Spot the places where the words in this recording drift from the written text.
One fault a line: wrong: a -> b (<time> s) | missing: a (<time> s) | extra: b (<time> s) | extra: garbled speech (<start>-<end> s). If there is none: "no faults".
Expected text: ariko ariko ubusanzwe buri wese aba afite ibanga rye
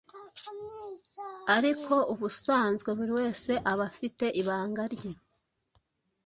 missing: ariko (1.9 s)